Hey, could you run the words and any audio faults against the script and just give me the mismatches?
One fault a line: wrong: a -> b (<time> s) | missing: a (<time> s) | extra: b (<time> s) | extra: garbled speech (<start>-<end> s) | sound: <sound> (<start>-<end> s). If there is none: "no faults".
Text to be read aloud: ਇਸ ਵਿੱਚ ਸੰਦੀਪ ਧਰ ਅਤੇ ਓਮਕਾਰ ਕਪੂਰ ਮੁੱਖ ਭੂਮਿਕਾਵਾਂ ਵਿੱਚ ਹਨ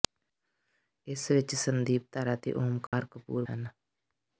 sound: dropout (2.9-2.9 s)
missing: ਮੁੱਖ ਭੂਮਿਕਾਵਾਂ ਵਿੱਚ (3.5 s)